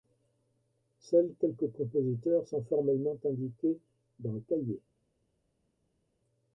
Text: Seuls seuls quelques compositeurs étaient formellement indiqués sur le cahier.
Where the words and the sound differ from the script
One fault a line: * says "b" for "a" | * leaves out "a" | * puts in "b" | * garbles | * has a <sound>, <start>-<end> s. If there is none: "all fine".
* leaves out "seuls"
* says "sont" for "étaient"
* says "dans" for "sur"